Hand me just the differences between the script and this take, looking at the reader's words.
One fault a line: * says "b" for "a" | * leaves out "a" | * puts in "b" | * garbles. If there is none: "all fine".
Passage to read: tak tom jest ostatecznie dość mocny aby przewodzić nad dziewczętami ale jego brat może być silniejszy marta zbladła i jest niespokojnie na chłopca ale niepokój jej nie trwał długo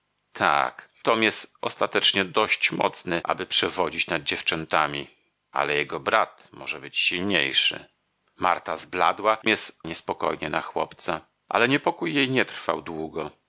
all fine